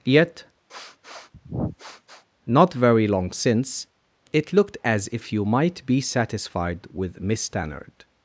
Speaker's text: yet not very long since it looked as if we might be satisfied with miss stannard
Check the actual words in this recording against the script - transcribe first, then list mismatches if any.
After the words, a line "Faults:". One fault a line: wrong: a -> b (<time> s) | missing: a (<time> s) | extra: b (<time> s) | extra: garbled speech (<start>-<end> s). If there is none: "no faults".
yet not very long since it looked as if you might be satisfied with miss stannard
Faults:
wrong: we -> you (5.3 s)